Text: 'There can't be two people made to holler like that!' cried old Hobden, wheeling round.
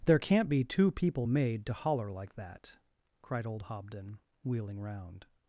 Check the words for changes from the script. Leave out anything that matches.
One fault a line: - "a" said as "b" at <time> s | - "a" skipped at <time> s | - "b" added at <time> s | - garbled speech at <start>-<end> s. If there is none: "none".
none